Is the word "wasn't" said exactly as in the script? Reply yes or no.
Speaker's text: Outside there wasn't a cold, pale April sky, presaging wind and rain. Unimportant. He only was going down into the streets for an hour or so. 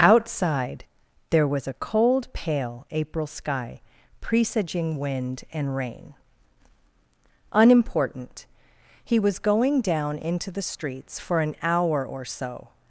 no